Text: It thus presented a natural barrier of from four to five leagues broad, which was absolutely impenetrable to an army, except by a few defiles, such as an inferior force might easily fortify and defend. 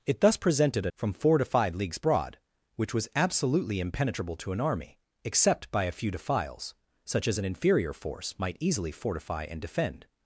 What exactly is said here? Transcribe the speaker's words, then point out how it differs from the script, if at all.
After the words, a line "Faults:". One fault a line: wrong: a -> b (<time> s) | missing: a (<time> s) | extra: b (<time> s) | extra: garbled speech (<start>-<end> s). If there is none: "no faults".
It thus presented a from four to five leagues broad, which was absolutely impenetrable to an army, except by a few defiles, such as an inferior force might easily fortify and defend.
Faults:
missing: natural barrier of (0.9 s)